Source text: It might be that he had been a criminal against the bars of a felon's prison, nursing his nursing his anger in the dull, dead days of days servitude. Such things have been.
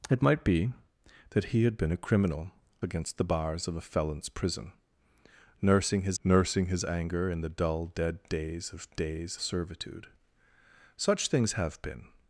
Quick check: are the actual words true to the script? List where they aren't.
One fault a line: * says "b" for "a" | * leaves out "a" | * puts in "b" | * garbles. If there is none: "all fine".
all fine